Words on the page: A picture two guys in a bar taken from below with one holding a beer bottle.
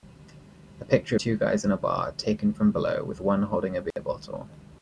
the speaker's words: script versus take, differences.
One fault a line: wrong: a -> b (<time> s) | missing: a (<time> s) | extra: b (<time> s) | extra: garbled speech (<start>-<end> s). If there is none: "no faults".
no faults